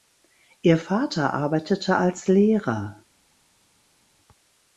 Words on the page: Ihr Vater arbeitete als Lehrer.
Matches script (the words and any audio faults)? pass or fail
pass